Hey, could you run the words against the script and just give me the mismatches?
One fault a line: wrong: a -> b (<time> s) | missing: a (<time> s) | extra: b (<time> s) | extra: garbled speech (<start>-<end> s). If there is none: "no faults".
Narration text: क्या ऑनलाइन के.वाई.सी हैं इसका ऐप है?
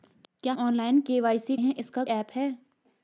no faults